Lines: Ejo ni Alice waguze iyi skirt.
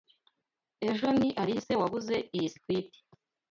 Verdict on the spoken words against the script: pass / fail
pass